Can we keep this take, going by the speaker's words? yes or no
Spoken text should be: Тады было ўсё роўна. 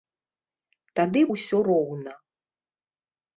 no